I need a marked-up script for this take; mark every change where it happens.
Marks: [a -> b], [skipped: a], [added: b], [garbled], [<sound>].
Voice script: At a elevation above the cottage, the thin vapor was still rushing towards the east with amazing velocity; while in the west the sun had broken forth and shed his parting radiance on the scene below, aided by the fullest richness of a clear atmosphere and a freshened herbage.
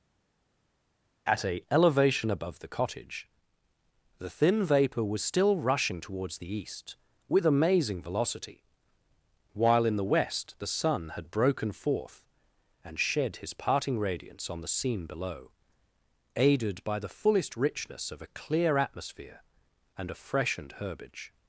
At a elevation above the cottage, the thin vapor was still rushing towards the east with amazing velocity; while in the west the sun had broken forth and shed his parting radiance on the scene below, aided by the fullest richness of a clear atmosphere and a freshened herbage.